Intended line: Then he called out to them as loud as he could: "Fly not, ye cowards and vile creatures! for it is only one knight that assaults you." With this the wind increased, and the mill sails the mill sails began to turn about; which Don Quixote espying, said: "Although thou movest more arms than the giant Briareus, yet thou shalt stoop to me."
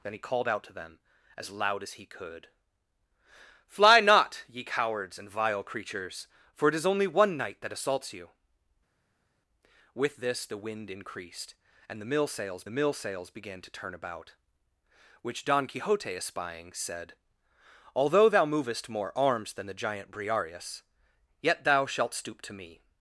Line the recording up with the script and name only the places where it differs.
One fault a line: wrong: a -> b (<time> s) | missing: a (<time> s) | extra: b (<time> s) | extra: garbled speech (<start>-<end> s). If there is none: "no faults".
no faults